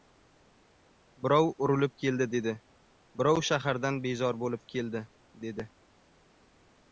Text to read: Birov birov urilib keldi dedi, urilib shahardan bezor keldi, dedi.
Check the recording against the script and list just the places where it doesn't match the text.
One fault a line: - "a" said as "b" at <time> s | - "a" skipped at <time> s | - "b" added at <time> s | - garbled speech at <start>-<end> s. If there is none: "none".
- "birov" skipped at 1.5 s
- "urilib" said as "birov" at 3.2 s
- "bo‘lib" added at 4.4 s